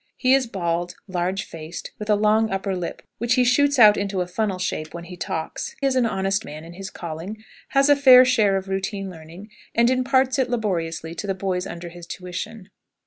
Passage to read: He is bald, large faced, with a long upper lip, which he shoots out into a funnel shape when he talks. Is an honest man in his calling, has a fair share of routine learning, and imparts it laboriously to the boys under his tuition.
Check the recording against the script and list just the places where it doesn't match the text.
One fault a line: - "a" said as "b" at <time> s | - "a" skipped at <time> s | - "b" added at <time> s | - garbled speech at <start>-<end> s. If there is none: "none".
none